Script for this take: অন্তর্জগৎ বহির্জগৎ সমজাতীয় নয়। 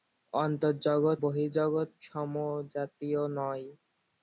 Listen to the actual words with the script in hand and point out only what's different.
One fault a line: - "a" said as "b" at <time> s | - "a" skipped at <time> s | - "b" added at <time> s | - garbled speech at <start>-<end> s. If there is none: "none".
none